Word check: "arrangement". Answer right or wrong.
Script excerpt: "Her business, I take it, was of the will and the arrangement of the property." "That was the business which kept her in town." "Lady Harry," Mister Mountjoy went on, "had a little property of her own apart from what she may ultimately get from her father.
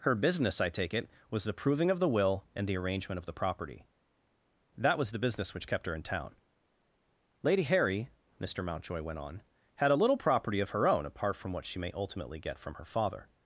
right